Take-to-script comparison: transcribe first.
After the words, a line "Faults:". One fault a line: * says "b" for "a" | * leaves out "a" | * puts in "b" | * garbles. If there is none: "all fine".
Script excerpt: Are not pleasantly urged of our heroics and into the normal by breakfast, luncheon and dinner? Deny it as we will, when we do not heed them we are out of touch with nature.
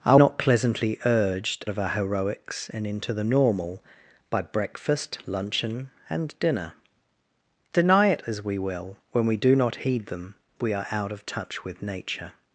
Are not pleasantly urged of our heroics and into the normal by breakfast, luncheon and dinner? Deny it as we will, when we do not heed them we are out of touch with nature.
Faults:
all fine